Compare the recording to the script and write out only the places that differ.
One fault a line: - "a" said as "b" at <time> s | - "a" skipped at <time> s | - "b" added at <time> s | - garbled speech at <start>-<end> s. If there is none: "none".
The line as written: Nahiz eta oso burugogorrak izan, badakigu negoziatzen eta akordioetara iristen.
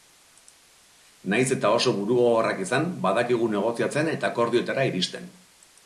none